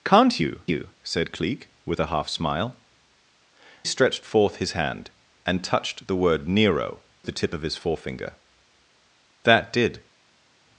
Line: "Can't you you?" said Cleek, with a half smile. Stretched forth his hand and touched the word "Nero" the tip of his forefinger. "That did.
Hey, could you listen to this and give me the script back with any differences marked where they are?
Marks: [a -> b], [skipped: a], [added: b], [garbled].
"Can't you you?" said Cleek, with a half smile. Stretched forth his hand and touched the word "Nero" the tip of his forefinger. "That did.